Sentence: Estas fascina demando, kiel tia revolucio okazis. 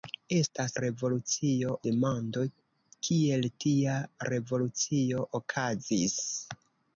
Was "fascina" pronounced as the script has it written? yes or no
no